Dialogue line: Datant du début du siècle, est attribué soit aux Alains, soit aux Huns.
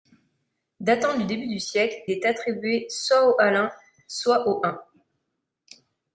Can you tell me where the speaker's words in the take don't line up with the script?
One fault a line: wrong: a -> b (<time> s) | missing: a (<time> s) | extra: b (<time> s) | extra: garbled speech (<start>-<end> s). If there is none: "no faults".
no faults